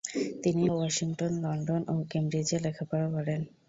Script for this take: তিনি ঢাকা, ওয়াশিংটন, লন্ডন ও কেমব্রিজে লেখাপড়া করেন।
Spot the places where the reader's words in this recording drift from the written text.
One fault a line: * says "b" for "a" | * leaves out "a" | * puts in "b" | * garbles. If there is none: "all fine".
* leaves out "ঢাকা"